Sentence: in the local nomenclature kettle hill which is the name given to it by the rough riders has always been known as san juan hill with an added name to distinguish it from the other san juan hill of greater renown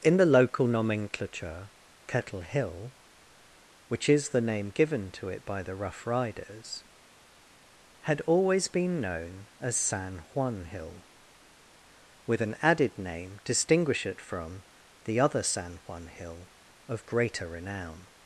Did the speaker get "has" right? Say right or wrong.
wrong